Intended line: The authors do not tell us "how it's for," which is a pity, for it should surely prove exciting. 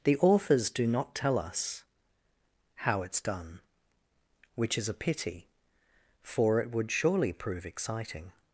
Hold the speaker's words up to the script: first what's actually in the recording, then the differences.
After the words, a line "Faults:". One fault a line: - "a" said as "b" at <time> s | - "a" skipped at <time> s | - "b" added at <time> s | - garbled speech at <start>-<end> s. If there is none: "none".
The authors do not tell us "how it's done," which is a pity, for it would surely prove exciting.
Faults:
- "for" said as "done" at 3.2 s
- "should" said as "would" at 6.7 s